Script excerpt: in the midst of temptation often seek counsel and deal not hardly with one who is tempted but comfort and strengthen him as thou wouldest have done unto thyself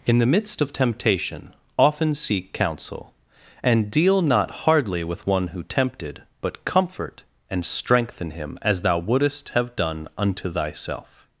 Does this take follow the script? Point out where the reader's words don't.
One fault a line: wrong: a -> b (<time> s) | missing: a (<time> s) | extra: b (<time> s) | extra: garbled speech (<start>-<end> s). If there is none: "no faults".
missing: is (5.6 s)